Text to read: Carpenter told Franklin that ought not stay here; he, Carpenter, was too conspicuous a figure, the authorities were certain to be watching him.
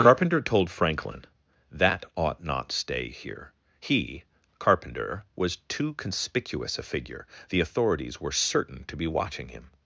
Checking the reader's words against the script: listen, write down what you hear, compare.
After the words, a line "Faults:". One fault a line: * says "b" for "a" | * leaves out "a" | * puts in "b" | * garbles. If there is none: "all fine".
Carpenter told Franklin that ought not stay here; he, Carpenter, was too conspicuous a figure, the authorities were certain to be watching him.
Faults:
all fine